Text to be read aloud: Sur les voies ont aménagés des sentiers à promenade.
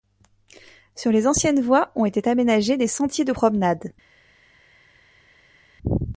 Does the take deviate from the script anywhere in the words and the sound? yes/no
yes